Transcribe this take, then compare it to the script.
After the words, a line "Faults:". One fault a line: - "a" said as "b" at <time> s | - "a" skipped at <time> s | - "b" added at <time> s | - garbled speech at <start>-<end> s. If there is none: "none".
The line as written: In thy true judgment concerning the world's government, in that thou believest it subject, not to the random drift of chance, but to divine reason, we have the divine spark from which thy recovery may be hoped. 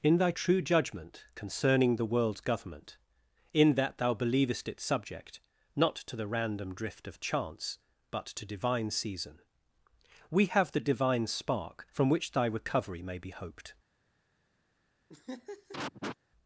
In thy true judgment concerning the world's government, in that thou believest it subject, not to the random drift of chance, but to divine season, we have the divine spark from which thy recovery may be hoped.
Faults:
- "reason" said as "season" at 8.9 s